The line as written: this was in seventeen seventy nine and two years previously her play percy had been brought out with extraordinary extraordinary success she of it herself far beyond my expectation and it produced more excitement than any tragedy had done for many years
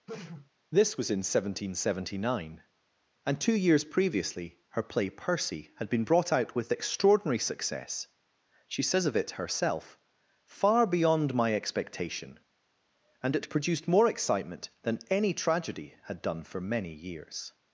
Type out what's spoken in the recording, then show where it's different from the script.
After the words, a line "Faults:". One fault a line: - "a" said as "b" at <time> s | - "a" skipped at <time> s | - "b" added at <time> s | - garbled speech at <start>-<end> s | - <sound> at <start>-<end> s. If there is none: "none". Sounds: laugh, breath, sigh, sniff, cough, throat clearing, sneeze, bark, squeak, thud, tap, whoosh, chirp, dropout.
this was in seventeen seventy nine and two years previously her play percy had been brought out with extraordinary success she says of it herself far beyond my expectation and it produced more excitement than any tragedy had done for many years
Faults:
- sneeze at 0.1-0.5 s
- "extraordinary" skipped at 7.4 s
- "says" added at 8.8 s